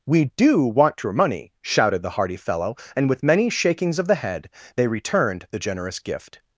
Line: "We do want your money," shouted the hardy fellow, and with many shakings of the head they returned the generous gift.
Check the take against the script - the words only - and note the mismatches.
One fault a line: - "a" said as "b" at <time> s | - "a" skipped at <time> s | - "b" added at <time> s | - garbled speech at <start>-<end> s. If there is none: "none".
none